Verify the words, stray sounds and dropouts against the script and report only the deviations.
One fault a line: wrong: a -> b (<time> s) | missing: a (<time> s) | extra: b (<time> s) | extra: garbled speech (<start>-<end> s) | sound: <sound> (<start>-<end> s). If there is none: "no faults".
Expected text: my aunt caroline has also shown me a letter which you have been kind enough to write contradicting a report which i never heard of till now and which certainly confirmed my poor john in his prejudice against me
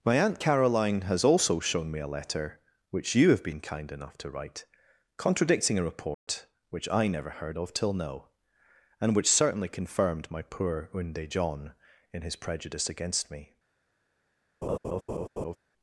sound: dropout (6.1-6.3 s)
extra: unde (10.9 s)
sound: laugh (14.6-15.6 s)